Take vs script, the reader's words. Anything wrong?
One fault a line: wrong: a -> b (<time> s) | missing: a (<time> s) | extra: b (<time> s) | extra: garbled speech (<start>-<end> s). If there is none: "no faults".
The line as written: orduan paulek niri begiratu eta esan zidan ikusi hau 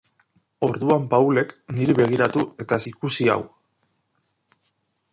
missing: esan zidan (2.8 s)